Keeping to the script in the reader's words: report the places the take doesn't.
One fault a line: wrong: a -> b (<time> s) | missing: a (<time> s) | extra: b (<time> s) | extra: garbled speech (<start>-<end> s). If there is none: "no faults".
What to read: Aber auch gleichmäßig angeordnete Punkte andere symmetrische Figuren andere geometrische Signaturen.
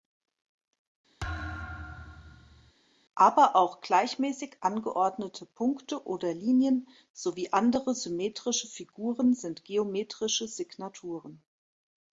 extra: oder Linien sowie (6.0 s)
wrong: andere -> sind (9.3 s)